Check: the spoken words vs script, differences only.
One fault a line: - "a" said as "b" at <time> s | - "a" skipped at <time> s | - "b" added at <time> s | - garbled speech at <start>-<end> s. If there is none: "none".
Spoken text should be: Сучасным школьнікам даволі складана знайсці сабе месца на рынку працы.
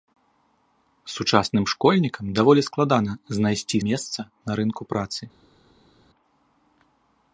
- "сабе" skipped at 3.8 s